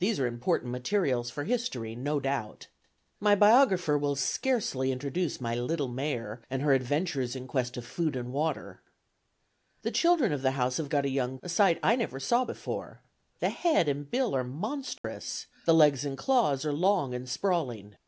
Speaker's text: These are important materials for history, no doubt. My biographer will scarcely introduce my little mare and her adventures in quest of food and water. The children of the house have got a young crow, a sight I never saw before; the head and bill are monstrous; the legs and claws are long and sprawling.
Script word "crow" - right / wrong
wrong